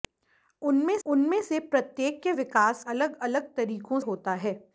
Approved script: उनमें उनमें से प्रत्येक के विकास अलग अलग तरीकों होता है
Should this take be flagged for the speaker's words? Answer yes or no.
no